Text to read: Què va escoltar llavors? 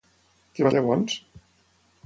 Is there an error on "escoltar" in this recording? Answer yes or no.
yes